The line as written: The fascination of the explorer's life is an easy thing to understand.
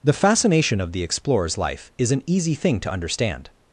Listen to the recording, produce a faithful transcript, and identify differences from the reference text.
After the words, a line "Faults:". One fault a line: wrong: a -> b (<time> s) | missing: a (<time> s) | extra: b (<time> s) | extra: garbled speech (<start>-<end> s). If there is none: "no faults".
The fascination of the explorer's life is an easy thing to understand.
Faults:
no faults